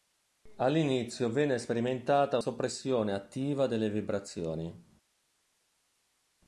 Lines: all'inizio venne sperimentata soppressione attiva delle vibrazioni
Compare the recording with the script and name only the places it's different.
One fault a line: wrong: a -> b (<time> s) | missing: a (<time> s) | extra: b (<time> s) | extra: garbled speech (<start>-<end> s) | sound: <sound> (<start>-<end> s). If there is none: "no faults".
no faults